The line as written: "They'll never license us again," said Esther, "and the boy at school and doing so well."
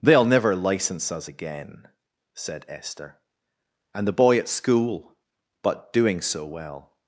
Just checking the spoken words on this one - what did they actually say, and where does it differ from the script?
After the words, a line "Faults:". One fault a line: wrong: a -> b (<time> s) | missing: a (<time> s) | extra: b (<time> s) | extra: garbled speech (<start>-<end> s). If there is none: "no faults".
"They'll never license us again," said Esther, "and the boy at school but doing so well."
Faults:
wrong: and -> but (5.6 s)